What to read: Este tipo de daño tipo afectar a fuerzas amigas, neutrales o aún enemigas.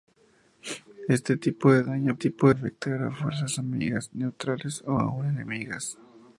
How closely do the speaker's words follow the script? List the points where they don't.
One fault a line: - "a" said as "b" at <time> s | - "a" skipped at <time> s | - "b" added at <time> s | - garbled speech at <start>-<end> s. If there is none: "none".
none